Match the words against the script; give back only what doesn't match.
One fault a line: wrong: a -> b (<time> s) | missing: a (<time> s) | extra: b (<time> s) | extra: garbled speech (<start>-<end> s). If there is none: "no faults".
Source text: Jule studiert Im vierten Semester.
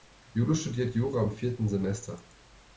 extra: Jura (0.9 s)